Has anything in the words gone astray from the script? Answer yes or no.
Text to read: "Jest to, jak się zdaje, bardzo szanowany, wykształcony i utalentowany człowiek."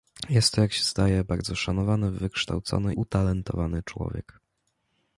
yes